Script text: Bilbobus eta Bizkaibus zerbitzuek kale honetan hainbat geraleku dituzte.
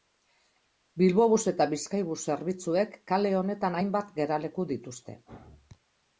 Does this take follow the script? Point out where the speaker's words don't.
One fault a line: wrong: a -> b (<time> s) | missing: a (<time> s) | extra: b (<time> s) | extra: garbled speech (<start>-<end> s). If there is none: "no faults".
no faults